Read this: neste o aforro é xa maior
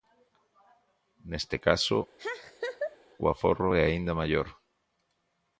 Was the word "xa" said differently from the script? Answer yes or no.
yes